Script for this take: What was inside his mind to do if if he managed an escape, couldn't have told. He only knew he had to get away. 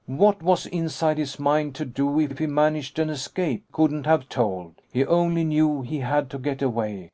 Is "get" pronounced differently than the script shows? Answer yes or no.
no